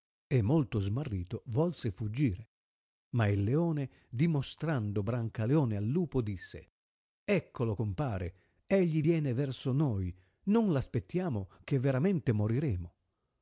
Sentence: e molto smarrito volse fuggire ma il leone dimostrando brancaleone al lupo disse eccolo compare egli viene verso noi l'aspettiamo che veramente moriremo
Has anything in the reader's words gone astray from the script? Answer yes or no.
yes